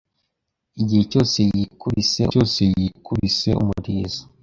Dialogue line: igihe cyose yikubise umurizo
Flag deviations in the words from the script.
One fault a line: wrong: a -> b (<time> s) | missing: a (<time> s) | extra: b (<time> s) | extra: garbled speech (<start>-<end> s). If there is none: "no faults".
extra: cyose yikubise (2.3 s)